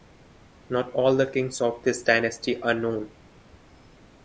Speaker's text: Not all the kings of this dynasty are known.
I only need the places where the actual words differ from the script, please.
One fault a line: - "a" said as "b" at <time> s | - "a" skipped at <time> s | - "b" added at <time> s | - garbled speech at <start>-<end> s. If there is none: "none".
none